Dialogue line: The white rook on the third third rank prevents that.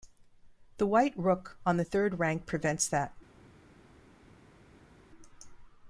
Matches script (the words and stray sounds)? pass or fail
fail